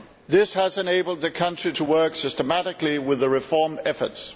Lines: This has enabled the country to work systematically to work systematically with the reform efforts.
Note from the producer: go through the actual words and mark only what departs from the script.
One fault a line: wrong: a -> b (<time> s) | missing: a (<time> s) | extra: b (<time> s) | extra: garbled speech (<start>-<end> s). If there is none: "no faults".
missing: to work systematically (3.0 s)